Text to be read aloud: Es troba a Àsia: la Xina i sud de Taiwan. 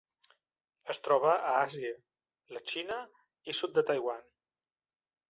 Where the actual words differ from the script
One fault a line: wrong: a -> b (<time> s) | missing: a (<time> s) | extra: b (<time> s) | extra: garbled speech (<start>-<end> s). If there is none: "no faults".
no faults